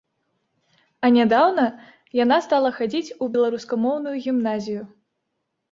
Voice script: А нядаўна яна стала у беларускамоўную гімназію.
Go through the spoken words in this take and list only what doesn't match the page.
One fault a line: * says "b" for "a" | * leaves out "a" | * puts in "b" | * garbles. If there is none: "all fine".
* puts in "хадзіць"